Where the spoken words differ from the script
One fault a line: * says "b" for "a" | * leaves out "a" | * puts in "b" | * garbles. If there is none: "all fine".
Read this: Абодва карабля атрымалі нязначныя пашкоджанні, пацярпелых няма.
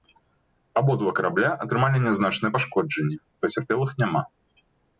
all fine